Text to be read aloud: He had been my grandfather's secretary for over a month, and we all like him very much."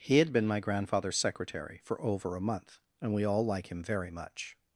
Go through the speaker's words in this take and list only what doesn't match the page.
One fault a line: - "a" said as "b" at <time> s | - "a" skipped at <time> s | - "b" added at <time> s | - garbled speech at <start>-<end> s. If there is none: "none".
none